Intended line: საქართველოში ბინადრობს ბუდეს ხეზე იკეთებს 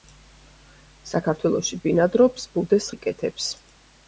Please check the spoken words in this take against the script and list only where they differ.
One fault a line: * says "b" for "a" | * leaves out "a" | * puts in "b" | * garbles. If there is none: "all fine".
* leaves out "ხეზე"